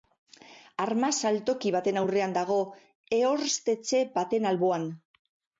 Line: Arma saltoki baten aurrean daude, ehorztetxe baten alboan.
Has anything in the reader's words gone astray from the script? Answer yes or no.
yes